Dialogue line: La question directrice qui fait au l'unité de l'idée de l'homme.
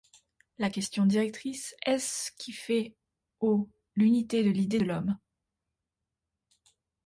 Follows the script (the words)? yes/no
no